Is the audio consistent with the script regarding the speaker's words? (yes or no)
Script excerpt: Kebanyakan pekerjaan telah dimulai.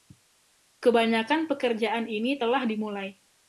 no